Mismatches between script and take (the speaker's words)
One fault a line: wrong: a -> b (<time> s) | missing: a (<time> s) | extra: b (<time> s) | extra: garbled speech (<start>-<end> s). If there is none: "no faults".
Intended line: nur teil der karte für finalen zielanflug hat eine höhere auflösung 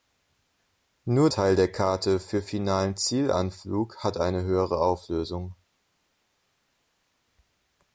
no faults